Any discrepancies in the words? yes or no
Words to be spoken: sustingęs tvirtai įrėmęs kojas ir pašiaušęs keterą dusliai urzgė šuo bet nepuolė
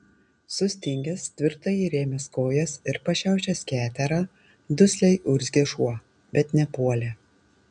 no